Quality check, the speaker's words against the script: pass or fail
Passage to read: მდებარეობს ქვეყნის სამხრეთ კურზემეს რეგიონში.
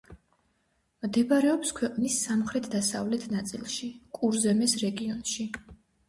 fail